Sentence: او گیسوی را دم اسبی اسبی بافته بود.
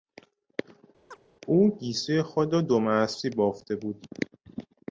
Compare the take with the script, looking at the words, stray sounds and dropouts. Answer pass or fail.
fail